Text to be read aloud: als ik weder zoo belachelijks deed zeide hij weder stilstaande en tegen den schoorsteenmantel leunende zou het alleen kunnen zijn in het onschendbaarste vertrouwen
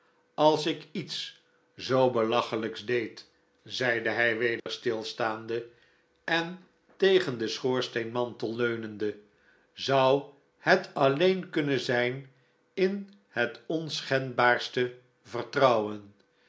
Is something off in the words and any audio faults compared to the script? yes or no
yes